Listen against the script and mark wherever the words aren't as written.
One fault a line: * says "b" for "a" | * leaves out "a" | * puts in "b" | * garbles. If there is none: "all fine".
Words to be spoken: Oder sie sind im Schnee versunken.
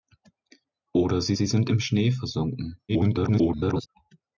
* puts in "sie"
* garbles